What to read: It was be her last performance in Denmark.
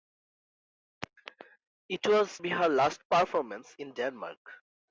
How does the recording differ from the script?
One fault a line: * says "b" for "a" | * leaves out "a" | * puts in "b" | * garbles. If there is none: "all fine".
all fine